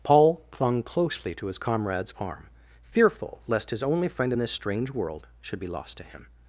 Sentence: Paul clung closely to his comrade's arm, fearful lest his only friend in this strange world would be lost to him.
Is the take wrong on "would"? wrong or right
wrong